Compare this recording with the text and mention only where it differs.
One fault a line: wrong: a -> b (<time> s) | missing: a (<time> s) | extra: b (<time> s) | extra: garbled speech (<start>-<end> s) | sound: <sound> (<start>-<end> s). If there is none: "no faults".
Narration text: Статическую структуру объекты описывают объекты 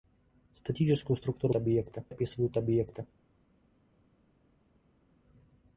no faults